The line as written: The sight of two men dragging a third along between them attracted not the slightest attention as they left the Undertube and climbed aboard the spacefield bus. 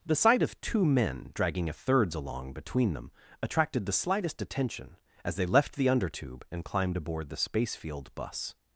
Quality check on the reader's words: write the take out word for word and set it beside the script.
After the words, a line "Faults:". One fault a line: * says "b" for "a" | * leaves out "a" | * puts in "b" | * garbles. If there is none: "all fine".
The sight of two men dragging a thirds along between them attracted the slightest attention as they left the Undertube and climbed aboard the spacefield bus.
Faults:
* says "thirds" for "third"
* leaves out "not"